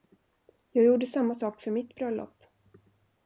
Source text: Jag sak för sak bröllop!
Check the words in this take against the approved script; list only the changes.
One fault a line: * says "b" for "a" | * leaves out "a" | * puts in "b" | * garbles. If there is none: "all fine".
* puts in "gjorde samma"
* says "mitt" for "sak"